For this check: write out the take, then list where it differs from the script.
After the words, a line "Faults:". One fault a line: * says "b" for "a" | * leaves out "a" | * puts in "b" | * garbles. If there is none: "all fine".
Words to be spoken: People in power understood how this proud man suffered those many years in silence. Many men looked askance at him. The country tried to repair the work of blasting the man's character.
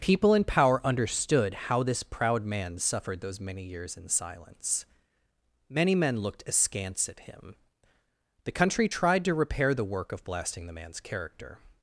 People in power understood how this proud man suffered those many years in silence. Many men looked askance at him. The country tried to repair the work of blasting the man's character.
Faults:
all fine